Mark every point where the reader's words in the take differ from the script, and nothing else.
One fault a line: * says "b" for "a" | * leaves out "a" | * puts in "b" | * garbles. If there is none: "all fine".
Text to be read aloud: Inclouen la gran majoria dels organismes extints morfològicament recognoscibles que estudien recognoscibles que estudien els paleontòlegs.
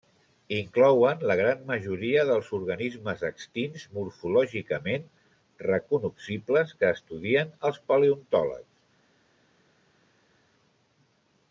* leaves out "recognoscibles que estudien"